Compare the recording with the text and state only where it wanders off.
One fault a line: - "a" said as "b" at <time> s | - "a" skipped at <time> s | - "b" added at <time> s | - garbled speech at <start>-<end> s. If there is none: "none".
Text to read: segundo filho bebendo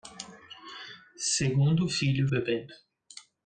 none